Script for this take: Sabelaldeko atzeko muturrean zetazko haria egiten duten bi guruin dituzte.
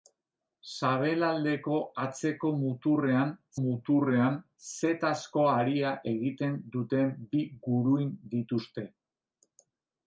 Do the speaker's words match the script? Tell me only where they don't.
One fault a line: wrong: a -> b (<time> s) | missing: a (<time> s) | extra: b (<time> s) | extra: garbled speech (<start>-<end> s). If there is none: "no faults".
extra: muturrean (3.6 s)